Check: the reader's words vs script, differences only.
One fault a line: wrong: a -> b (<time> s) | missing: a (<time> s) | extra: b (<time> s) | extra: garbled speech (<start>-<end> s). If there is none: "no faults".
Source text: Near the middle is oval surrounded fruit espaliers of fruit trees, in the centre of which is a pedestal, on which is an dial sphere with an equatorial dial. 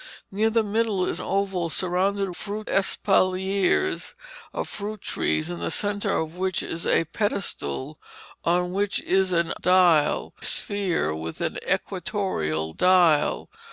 no faults